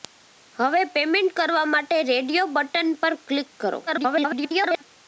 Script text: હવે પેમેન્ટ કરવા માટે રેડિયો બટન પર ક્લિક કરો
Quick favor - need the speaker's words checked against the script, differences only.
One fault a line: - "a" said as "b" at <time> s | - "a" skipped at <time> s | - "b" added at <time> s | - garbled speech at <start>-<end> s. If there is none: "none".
- garbled speech at 3.9-4.8 s